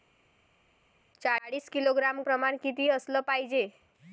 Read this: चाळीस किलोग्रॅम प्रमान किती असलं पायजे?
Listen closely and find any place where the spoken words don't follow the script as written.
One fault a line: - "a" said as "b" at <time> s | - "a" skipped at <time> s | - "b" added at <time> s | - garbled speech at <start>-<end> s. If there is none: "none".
none